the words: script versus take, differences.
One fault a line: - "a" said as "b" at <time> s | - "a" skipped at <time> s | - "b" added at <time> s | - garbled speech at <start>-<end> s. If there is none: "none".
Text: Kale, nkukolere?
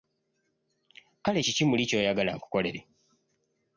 - "kiki muli ky'oyagala" added at 1.4 s